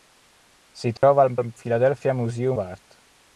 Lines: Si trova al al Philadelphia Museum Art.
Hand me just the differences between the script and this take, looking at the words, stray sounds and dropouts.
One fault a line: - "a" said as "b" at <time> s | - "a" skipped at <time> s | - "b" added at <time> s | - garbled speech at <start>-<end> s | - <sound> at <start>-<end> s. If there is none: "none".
- dropout at 1.0-1.0 s